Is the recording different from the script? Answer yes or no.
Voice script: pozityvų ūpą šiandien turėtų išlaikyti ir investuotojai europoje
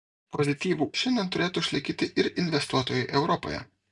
yes